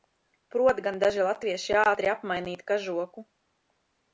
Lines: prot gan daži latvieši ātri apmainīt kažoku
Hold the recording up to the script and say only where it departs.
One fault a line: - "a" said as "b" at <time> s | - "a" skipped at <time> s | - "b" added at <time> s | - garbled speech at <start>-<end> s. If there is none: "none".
none